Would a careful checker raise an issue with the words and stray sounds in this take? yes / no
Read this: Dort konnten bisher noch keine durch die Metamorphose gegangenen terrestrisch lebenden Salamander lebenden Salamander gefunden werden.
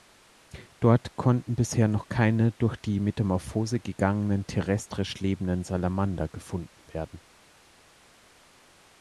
yes